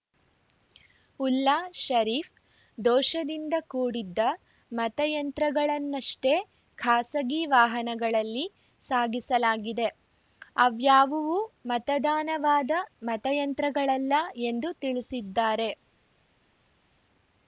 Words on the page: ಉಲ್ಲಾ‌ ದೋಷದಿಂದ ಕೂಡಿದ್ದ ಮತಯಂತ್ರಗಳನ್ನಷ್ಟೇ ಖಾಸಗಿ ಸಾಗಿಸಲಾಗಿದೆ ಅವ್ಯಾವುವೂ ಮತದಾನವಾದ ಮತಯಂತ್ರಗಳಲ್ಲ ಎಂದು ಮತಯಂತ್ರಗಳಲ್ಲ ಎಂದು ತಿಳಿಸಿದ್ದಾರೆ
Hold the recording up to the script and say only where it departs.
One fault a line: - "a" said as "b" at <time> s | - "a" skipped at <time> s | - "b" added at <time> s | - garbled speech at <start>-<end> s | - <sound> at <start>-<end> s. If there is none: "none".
- "ಶರೀಫ್" added at 1.8 s
- "ವಾಹನಗಳಲ್ಲಿ" added at 7.5 s
- "ಮತಯಂತ್ರಗಳಲ್ಲ ಎಂದು" skipped at 14.7 s